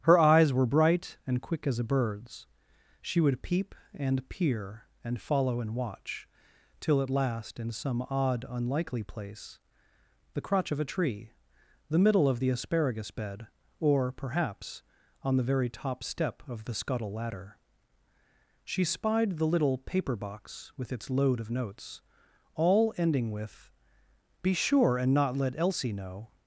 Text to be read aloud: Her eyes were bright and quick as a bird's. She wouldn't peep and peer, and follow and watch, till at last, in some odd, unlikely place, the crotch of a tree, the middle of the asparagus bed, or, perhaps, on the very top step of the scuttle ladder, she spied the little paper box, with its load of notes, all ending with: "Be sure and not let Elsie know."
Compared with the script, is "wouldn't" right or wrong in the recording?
wrong